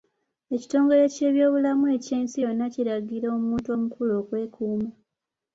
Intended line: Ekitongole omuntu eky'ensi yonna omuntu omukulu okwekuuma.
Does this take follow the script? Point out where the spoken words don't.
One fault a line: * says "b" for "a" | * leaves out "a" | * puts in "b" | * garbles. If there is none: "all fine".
* says "ky'ebyobulamu" for "omuntu"
* puts in "kiragira"